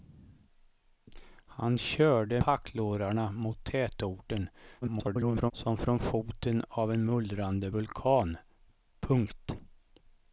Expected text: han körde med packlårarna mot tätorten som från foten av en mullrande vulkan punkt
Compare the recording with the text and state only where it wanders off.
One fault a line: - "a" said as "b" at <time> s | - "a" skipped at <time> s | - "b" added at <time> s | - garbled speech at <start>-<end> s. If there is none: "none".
- "med" skipped at 2.4 s
- garbled speech at 4.8-5.5 s